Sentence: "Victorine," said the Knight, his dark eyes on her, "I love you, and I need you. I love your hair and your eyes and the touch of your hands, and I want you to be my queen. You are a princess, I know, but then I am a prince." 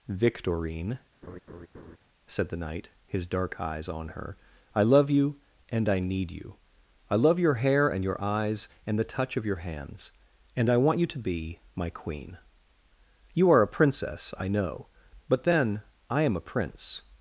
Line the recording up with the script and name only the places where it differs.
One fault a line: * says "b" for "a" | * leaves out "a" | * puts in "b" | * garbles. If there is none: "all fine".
all fine